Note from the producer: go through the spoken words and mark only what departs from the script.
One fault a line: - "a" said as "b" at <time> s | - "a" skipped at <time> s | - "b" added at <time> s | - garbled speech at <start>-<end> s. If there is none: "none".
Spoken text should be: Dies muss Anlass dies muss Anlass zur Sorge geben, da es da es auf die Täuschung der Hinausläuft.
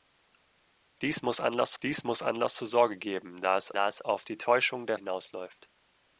none